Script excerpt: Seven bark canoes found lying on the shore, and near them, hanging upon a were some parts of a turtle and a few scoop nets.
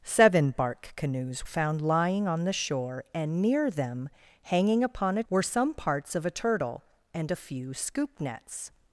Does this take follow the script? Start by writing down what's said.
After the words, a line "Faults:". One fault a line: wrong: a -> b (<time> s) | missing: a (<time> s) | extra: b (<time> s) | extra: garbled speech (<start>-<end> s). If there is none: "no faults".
Seven bark canoes found lying on the shore, and near them, hanging upon a were some parts of a turtle and a few scoop nets.
Faults:
no faults